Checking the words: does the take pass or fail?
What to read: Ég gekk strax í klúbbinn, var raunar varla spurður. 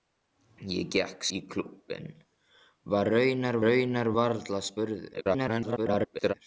fail